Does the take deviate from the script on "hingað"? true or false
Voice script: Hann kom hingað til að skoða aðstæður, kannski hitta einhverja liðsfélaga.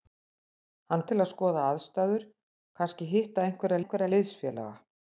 true